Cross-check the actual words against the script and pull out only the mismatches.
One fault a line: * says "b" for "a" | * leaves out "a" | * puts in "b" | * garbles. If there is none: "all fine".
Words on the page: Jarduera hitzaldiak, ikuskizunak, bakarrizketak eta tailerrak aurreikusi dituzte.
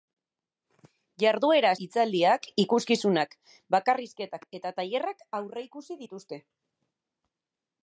all fine